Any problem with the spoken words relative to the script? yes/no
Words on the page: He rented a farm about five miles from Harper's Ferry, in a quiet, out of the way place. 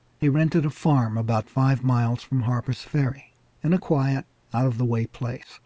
no